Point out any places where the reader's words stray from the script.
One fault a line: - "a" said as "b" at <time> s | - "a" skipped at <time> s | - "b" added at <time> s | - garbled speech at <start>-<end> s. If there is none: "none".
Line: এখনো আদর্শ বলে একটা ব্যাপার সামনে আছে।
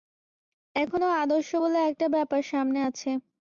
none